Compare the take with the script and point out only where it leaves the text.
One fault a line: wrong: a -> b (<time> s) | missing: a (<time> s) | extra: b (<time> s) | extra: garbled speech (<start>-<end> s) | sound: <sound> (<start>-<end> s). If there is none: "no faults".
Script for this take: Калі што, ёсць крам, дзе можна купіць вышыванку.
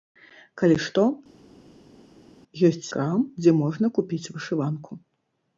no faults